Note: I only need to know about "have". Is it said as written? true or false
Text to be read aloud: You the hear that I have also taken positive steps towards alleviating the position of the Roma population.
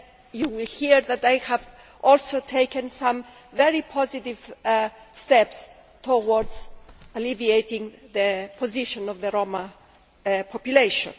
true